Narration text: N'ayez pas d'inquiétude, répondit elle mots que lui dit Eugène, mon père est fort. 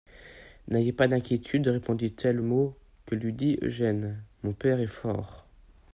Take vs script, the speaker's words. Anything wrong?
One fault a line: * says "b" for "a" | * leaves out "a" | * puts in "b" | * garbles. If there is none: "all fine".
all fine